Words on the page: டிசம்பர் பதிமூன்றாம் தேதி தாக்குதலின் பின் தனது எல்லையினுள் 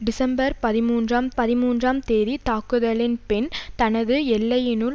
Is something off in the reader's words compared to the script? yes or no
yes